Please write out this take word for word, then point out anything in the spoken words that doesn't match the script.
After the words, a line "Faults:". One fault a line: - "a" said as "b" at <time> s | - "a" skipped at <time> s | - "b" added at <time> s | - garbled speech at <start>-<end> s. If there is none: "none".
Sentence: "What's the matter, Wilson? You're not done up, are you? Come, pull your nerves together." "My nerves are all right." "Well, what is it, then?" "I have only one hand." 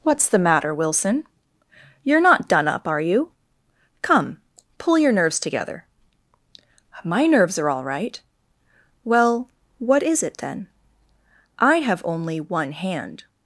"What's the matter, Wilson? You're not done up, are you? Come, pull your nerves together." "My nerves are all right." "Well, what is it, then?" "I have only one hand."
Faults:
none